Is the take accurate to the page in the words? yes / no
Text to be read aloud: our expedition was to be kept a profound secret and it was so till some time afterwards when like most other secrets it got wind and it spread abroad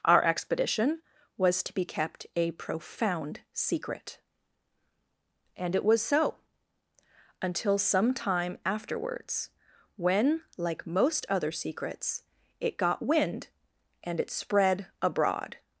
no